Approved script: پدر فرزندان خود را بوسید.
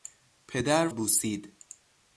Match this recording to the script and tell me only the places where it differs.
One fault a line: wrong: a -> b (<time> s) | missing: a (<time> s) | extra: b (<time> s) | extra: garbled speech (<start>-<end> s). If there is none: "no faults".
missing: فرزندان خود را (0.9 s)